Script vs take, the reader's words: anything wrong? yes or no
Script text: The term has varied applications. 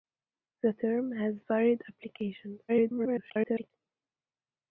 yes